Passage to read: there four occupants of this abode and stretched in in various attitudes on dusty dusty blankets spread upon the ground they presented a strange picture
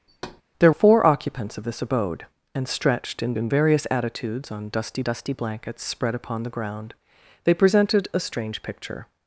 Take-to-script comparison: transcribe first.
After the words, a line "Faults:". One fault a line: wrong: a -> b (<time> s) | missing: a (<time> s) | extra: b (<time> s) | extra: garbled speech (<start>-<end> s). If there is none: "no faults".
there four occupants of this abode and stretched in in various attitudes on dusty dusty blankets spread upon the ground they presented a strange picture
Faults:
no faults